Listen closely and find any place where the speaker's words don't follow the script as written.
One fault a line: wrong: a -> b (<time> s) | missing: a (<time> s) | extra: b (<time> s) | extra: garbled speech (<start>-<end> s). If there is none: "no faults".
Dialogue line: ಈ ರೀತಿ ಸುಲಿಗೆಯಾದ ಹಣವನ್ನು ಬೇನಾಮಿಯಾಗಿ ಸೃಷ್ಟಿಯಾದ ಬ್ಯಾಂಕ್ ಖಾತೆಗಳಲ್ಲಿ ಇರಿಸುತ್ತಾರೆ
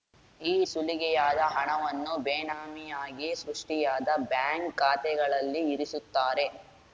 missing: ರೀತಿ (0.5 s)